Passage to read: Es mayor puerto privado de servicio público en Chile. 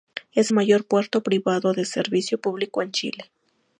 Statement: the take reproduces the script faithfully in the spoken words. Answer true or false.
true